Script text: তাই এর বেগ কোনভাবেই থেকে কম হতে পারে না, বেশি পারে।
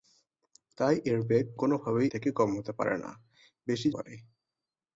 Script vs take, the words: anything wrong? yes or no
no